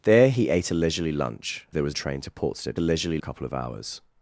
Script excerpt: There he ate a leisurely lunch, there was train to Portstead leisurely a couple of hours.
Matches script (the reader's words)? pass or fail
pass